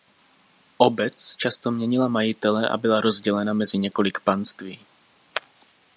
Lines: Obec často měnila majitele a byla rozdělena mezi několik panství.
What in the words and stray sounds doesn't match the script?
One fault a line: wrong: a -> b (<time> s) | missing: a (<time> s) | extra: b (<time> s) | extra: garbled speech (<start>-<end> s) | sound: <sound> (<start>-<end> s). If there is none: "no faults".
no faults